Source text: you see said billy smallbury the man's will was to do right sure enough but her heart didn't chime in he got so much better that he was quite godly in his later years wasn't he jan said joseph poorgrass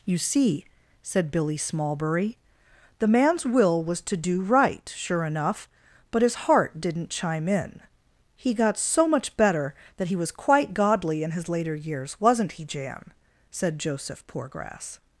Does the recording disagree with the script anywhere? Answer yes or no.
yes